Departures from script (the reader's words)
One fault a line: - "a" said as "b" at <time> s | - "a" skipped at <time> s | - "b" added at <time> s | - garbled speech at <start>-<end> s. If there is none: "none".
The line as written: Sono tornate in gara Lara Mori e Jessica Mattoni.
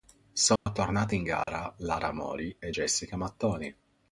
none